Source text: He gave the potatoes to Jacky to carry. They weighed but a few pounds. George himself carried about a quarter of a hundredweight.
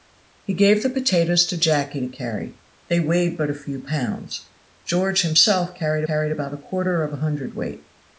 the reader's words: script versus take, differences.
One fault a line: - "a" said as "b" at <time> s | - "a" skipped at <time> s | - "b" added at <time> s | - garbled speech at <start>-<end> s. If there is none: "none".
- "carried" added at 6.0 s